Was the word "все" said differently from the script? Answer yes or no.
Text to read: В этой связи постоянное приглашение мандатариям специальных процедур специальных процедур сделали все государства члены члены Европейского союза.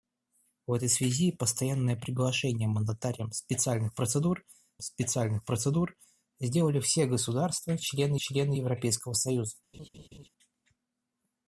no